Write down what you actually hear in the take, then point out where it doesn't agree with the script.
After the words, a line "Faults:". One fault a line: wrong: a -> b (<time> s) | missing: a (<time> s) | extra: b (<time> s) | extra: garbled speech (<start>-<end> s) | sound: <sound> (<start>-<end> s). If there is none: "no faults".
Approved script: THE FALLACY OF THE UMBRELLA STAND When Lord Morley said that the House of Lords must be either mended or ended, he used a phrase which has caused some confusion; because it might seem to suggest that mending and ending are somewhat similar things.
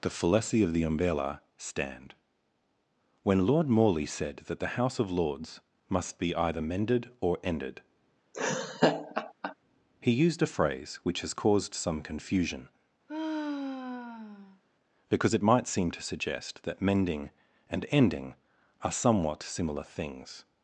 THE FALLACY OF THE UMBRELLA STAND When Lord Morley said that the House of Lords must be either mended or ended, he used a phrase which has caused some confusion; because it might seem to suggest that mending and ending are somewhat similar things.
Faults:
sound: laugh (8.3-9.5 s)
sound: sigh (13.1-14.6 s)